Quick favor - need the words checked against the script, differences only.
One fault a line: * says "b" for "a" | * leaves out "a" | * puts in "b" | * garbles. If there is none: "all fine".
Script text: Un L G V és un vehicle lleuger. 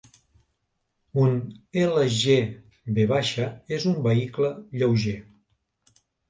all fine